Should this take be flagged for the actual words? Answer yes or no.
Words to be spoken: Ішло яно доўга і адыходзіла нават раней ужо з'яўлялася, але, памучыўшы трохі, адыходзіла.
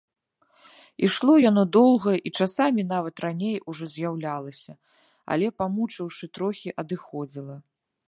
yes